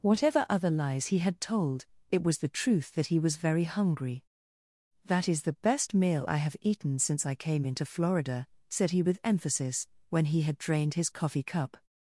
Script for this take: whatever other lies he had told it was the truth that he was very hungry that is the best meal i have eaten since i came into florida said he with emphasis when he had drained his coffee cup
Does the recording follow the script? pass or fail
pass